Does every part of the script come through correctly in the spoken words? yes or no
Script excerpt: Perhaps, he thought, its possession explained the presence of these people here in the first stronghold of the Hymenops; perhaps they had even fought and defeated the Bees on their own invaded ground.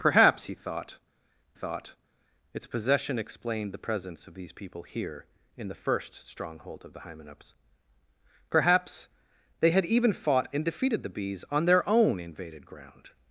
no